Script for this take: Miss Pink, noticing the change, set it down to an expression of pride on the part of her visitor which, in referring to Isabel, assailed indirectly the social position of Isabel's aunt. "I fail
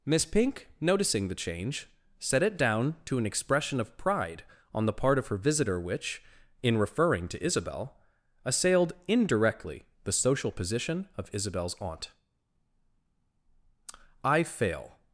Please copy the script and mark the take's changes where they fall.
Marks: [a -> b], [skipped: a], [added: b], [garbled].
Miss Pink, noticing the change, set it down to an expression of pride on the part of her visitor which, in referring to Isabel, assailed indirectly the social position of Isabel's aunt. "I fail